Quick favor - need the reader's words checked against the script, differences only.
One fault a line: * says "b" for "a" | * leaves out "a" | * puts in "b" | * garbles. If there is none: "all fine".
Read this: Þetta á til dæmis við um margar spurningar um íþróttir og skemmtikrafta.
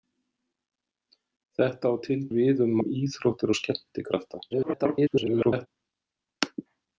* leaves out "dæmis"
* leaves out "margar spurningar"
* garbles